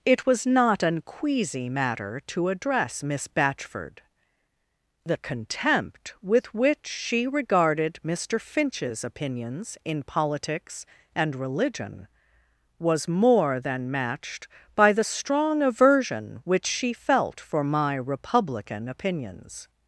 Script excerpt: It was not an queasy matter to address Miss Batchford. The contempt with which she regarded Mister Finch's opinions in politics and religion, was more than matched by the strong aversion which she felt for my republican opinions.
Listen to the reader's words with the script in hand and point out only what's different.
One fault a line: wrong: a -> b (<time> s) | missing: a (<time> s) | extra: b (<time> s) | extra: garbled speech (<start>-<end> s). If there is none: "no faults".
no faults